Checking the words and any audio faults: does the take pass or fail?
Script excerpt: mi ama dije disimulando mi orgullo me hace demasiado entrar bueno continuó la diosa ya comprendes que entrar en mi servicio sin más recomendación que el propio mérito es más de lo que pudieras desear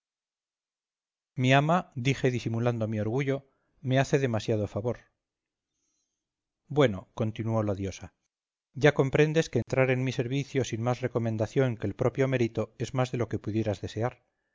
fail